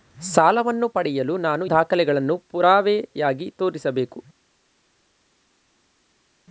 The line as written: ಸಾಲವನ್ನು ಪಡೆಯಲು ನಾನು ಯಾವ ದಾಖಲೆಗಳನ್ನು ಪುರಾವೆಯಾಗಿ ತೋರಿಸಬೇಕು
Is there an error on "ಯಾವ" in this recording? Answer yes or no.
yes